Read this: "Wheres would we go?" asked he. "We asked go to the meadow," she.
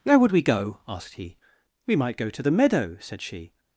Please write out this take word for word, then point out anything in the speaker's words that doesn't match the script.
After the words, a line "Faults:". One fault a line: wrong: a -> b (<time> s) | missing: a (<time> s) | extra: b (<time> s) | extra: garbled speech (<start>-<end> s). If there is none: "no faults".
"Where would we go?" asked he. "We might go to the meadow," said she.
Faults:
wrong: Wheres -> Where (0.0 s)
wrong: asked -> might (1.9 s)
extra: said (3.0 s)